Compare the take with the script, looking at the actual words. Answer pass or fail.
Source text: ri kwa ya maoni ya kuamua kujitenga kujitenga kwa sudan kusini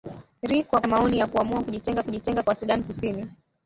pass